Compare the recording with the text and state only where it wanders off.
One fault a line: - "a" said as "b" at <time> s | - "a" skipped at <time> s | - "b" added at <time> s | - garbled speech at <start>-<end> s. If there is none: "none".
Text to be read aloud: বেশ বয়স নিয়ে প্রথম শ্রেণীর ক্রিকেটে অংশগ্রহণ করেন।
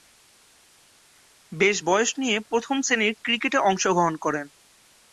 none